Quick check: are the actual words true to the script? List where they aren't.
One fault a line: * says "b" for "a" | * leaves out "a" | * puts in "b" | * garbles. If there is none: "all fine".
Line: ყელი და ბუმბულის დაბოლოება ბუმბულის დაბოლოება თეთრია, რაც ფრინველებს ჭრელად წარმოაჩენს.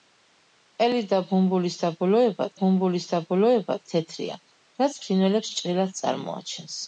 all fine